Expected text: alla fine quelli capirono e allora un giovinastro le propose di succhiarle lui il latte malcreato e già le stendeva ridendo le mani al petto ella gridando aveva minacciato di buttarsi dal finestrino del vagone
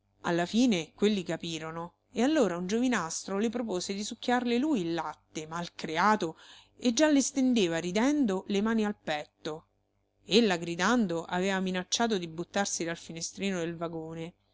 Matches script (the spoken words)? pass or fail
pass